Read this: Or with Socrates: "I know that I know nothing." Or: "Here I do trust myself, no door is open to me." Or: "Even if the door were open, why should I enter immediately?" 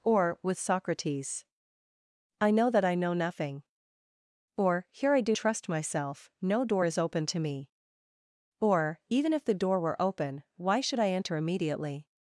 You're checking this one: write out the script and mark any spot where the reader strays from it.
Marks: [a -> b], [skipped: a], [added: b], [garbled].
Or with Socrates: "I know that I know nothing." Or: "Here I do trust myself, no door is open to me." Or: "Even if the door were open, why should I enter immediately?"